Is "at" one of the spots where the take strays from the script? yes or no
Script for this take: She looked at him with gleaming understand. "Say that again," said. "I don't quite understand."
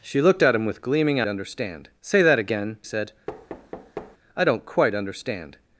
no